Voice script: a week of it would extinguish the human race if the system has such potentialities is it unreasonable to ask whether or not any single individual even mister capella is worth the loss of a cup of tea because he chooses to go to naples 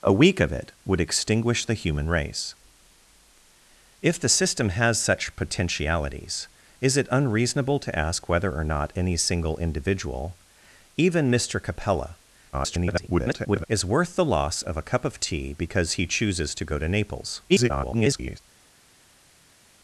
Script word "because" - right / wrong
right